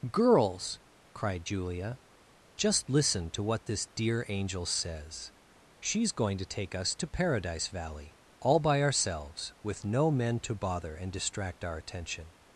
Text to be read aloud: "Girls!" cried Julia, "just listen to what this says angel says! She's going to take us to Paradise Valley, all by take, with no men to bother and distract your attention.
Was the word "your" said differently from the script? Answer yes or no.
yes